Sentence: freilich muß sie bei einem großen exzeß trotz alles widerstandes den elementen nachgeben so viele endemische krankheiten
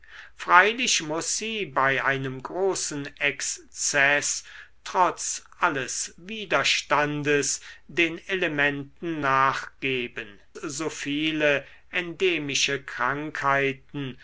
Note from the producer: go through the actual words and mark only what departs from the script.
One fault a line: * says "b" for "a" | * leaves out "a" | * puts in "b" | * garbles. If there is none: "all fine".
all fine